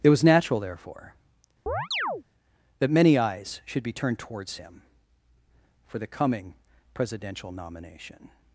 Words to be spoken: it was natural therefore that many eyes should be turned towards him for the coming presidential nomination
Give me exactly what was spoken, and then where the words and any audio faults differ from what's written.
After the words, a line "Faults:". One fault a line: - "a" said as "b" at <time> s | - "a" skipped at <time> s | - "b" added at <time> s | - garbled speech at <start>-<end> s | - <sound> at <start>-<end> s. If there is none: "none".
it was natural therefore that many eyes should be turned towards him for the coming presidential nomination
Faults:
- chirp at 1.7-2.2 s